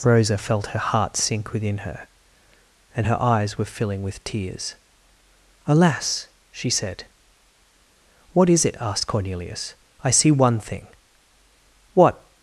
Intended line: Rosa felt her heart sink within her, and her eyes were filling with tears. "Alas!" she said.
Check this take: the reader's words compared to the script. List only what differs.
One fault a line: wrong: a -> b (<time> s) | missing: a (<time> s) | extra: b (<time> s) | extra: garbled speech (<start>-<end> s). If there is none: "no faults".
extra: What is it asked Cornelius I see one thing What (8.3 s)